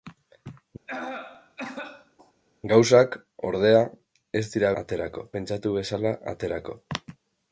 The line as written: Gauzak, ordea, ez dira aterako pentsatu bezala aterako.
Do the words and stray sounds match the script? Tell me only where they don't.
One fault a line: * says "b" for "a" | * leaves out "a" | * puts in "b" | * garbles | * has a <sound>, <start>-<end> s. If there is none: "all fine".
* has a cough, 0.9-2.3 s